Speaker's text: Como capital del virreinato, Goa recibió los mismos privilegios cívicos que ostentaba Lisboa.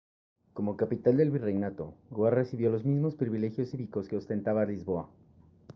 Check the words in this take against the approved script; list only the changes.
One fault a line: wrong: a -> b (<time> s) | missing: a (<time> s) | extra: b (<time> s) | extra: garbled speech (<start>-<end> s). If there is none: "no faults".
no faults